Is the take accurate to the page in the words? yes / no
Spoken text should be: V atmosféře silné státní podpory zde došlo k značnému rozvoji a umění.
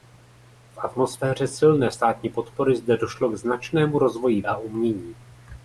yes